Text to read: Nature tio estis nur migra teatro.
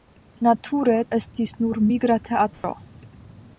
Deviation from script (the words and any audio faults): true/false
true